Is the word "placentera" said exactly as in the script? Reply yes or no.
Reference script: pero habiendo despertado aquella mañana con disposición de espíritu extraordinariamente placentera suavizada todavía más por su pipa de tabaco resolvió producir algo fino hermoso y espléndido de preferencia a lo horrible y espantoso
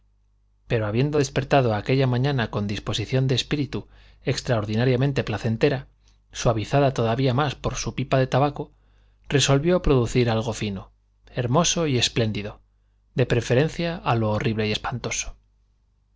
yes